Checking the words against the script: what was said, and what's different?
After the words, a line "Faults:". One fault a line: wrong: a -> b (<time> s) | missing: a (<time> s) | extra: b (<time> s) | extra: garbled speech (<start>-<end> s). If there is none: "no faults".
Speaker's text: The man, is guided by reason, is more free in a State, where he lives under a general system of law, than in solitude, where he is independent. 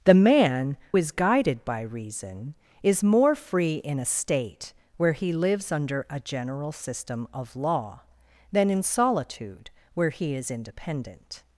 The man, is guided by reason, is more free in a State, where he lives under a general system of law, than in solitude, where he is independent.
Faults:
no faults